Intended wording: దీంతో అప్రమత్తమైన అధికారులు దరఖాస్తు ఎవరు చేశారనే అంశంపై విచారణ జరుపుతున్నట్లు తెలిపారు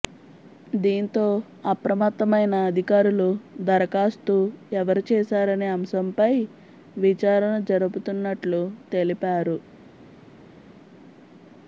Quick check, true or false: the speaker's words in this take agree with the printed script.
true